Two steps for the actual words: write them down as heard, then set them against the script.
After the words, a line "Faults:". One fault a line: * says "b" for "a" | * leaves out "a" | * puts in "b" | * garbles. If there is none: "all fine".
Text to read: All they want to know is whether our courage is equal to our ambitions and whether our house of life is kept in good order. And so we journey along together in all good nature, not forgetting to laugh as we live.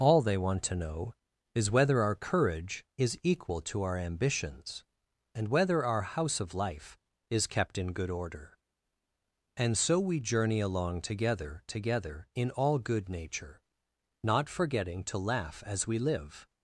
All they want to know is whether our courage is equal to our ambitions and whether our house of life is kept in good order. And so we journey along together together in all good nature, not forgetting to laugh as we live.
Faults:
* puts in "together"